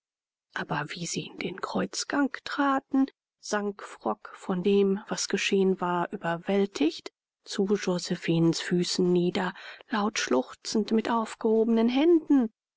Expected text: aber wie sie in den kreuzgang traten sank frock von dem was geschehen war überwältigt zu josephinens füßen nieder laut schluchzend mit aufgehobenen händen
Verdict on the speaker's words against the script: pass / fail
pass